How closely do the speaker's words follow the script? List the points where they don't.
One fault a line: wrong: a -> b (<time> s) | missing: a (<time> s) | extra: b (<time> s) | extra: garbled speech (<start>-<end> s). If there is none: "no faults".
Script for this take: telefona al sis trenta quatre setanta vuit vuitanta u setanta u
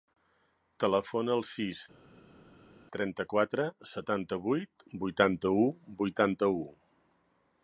wrong: setanta -> vuitanta (6.0 s)